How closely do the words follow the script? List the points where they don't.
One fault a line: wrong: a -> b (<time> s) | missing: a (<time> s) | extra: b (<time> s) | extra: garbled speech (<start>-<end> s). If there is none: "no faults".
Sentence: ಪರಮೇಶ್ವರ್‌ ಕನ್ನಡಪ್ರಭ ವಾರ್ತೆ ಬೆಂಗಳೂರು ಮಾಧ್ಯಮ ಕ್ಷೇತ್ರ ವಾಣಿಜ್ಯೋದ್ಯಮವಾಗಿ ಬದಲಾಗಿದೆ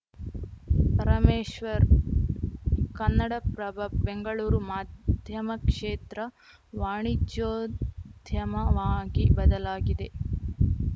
missing: ವಾರ್ತೆ (3.8 s)